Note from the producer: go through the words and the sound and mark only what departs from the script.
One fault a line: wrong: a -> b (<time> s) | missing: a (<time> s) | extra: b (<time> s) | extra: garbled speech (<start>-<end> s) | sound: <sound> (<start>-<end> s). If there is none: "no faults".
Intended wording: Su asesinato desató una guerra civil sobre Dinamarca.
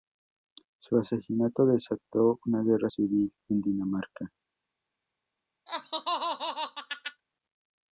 wrong: sobre -> en (3.5 s)
sound: laugh (5.7-7.2 s)